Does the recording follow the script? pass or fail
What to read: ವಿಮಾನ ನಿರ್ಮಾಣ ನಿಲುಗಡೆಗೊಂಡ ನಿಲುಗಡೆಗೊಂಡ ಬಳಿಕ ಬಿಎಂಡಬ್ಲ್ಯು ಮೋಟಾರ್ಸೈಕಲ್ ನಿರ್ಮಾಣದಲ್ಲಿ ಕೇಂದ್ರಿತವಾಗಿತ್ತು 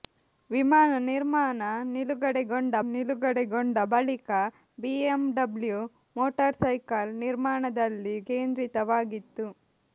pass